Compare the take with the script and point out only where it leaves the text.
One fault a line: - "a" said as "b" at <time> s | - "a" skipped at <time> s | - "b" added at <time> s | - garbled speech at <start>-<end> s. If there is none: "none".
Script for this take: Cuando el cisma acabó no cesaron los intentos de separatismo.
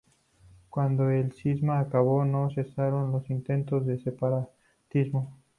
none